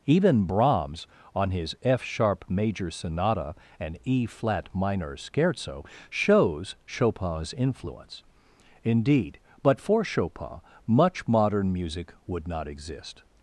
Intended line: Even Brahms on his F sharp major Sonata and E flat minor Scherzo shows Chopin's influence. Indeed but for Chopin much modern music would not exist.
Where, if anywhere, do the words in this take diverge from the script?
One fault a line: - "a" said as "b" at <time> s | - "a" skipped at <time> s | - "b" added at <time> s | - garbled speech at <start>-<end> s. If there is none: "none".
none